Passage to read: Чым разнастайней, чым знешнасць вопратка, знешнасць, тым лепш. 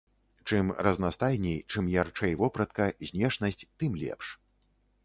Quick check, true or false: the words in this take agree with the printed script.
false